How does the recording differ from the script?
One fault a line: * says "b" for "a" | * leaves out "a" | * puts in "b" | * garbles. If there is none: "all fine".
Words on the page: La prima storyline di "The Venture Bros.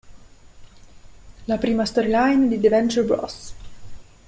all fine